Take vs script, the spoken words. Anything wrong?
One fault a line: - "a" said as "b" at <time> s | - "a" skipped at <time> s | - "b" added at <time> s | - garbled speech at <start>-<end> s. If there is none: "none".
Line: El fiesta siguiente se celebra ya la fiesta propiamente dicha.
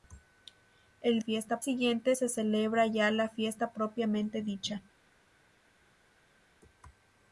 none